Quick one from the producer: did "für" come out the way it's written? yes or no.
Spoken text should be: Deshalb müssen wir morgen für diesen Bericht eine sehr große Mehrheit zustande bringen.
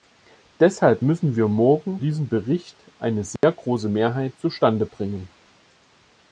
no